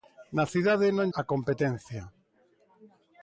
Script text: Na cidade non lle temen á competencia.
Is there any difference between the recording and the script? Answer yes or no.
yes